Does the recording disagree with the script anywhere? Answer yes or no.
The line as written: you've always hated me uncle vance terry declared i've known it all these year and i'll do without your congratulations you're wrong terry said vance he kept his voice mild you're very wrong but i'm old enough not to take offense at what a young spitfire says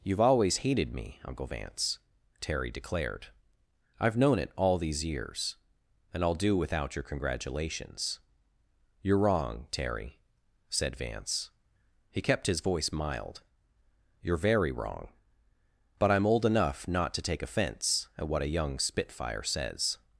yes